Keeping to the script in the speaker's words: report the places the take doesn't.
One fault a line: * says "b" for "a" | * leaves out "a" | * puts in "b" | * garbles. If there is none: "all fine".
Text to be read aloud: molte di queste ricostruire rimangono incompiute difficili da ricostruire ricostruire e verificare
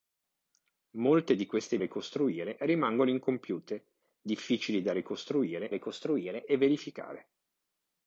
all fine